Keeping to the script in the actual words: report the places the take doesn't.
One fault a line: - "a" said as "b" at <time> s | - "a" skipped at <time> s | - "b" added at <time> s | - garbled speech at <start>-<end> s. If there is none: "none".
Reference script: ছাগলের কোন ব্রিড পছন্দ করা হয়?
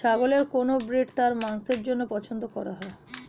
- "তার মাংসের জন্য" added at 1.1 s